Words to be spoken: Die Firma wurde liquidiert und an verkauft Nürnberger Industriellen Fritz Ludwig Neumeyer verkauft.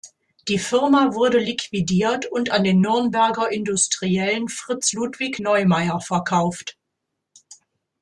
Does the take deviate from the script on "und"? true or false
false